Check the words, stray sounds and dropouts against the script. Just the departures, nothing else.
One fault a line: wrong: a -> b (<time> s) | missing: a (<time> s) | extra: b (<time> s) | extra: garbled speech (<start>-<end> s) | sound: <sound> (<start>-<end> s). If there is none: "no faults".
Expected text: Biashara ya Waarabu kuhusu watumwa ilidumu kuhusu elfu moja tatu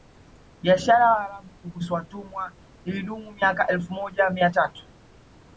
wrong: kuhusu -> miaka (3.3 s)
extra: mia (4.3 s)